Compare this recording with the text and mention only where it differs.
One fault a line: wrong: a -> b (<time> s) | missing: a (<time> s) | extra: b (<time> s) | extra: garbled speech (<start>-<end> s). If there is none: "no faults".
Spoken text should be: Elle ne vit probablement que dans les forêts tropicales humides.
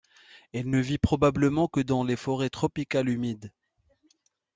no faults